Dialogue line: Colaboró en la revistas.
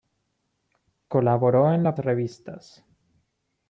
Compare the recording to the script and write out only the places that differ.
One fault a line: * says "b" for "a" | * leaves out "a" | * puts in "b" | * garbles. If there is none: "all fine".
all fine